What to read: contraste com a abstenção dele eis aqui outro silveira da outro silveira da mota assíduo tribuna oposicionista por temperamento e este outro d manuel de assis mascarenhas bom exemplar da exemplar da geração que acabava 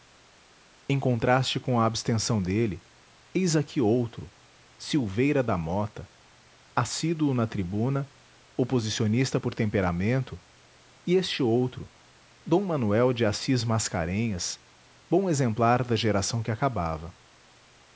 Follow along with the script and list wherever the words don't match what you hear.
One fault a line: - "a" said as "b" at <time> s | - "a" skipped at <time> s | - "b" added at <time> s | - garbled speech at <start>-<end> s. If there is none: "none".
- "outro silveira da" skipped at 5.5 s
- "na" added at 7.3 s
- "exemplar da" skipped at 15.9 s